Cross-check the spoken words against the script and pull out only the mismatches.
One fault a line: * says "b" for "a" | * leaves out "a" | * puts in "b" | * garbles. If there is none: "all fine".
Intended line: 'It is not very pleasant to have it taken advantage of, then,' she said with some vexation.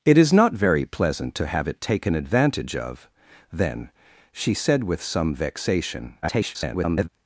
* garbles